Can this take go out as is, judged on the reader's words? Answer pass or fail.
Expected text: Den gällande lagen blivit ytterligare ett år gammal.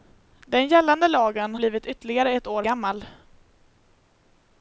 pass